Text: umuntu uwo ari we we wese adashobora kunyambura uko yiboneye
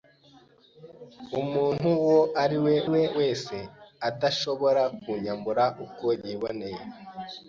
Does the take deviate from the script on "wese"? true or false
false